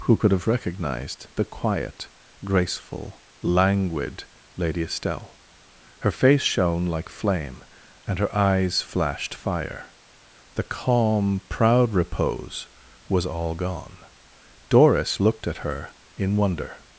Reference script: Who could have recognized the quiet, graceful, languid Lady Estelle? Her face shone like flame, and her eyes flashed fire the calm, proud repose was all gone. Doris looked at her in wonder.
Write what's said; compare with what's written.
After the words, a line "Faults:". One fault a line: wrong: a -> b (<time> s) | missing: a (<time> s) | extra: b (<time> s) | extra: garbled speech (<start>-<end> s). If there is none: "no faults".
Who could have recognized the quiet, graceful, languid Lady Estelle? Her face shone like flame, and her eyes flashed fire the calm, proud repose was all gone. Doris looked at her in wonder.
Faults:
no faults